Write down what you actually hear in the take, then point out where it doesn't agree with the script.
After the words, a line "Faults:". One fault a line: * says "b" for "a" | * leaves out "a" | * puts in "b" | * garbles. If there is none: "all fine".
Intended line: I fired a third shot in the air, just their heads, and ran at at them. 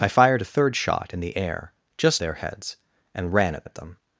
I fired a third shot in the air, just their heads, and ran at at them.
Faults:
all fine